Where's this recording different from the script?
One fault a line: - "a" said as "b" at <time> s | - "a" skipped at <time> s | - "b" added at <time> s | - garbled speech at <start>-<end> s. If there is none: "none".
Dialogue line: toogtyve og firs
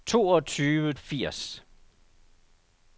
none